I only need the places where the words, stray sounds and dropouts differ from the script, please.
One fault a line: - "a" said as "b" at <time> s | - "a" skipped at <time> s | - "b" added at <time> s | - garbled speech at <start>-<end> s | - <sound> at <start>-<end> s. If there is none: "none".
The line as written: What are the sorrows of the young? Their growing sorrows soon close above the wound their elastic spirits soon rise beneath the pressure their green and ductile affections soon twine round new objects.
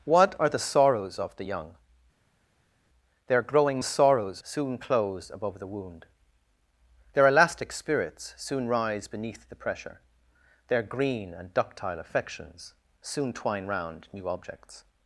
none